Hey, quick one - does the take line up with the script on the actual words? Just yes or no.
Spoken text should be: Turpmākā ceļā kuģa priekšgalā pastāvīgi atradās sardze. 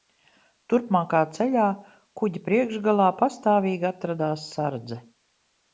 yes